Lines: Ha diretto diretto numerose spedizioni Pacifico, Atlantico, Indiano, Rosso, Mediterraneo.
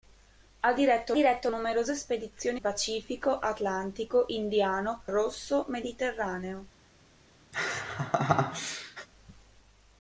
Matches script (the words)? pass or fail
pass